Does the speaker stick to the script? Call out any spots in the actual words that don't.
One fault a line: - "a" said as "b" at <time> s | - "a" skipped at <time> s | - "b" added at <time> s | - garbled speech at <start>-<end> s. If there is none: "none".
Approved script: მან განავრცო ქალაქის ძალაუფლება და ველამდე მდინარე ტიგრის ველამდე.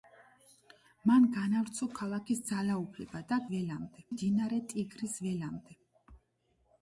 none